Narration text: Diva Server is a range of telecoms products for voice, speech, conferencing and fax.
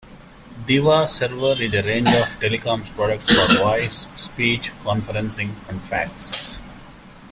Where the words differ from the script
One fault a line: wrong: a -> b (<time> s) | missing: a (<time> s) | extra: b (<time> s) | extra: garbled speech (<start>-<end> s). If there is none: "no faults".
no faults